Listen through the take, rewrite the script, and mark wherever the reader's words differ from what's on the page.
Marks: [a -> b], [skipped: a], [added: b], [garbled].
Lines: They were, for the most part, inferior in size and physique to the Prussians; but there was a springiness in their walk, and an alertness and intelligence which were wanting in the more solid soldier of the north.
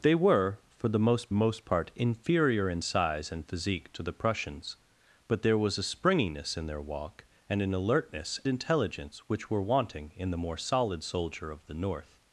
They were, for the most [added: most] part, inferior in size and physique to the Prussians; but there was a springiness in their walk, and an alertness [skipped: and] intelligence which were wanting in the more solid soldier of the north.